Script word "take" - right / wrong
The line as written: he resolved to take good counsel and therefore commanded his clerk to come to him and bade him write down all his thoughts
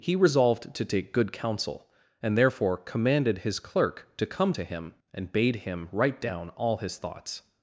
right